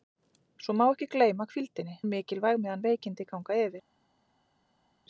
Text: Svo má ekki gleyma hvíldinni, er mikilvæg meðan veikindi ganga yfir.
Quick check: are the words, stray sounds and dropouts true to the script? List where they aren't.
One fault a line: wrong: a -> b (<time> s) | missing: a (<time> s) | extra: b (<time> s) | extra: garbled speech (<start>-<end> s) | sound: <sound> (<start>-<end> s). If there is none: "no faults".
no faults